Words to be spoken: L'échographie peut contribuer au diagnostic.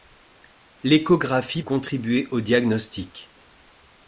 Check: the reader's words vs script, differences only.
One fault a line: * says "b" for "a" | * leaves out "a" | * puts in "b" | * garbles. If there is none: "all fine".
* leaves out "peut"